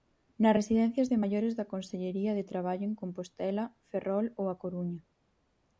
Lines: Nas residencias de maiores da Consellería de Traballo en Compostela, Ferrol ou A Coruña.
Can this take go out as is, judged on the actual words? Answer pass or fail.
pass